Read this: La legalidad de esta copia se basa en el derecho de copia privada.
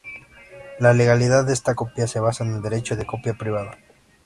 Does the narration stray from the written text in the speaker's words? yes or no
no